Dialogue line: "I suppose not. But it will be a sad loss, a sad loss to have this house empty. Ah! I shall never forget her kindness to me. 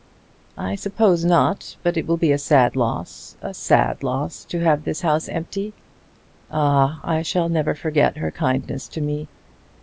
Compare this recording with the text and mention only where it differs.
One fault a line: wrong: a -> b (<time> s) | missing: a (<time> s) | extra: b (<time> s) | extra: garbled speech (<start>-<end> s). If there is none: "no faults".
no faults